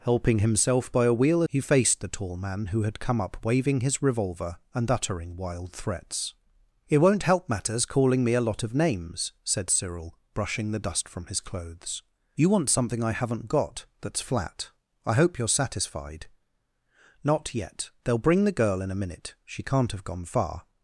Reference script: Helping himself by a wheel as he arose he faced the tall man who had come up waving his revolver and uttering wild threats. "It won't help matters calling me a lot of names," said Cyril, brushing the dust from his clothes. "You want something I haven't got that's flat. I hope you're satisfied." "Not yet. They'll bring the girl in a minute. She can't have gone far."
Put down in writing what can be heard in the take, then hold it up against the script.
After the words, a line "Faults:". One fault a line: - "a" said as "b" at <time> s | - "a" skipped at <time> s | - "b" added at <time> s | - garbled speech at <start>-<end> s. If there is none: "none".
Helping himself by a wheel he faced the tall man who had come up waving his revolver and uttering wild threats. "It won't help matters calling me a lot of names," said Cyril, brushing the dust from his clothes. "You want something I haven't got that's flat. I hope you're satisfied." "Not yet. They'll bring the girl in a minute. She can't have gone far."
Faults:
- "as he arose" skipped at 1.4 s